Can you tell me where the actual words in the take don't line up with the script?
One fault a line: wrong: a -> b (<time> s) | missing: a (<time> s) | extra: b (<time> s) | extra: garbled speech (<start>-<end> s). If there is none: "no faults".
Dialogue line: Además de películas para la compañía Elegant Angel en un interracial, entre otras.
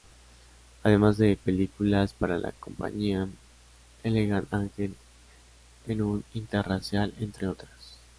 no faults